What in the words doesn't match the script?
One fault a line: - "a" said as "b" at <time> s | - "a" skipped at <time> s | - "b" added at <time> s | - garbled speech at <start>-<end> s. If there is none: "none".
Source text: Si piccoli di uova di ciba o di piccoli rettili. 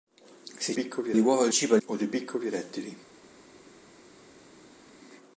none